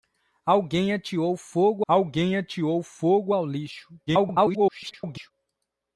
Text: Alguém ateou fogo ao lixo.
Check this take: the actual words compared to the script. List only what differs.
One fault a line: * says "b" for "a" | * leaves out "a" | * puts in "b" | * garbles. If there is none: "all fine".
* puts in "alguém ateou fogo"
* garbles